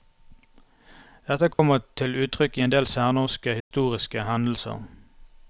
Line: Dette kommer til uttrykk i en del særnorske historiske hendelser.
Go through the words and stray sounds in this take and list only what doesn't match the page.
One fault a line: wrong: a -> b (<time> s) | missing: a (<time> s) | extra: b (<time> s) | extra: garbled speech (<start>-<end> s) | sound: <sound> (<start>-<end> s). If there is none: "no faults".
sound: dropout (1.5-1.6 s)
sound: dropout (3.6-3.7 s)